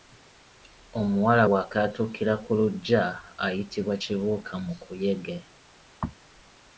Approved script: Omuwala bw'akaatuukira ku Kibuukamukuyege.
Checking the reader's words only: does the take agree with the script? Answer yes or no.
no